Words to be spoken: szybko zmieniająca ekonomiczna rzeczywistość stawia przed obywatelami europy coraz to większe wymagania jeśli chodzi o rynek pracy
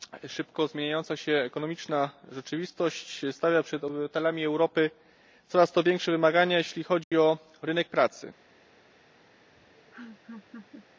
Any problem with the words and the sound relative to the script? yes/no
yes